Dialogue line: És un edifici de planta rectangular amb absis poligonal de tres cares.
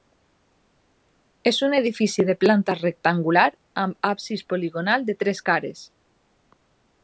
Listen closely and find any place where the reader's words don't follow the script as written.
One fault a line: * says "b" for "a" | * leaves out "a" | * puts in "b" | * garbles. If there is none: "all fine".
all fine